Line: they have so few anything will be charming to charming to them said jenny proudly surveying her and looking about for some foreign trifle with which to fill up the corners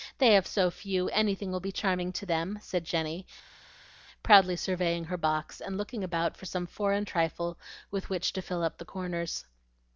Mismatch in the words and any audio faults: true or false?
true